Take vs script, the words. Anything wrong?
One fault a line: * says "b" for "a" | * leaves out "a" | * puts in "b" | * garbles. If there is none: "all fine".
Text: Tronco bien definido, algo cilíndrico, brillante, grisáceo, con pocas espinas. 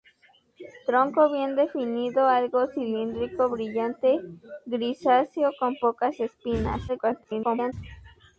* garbles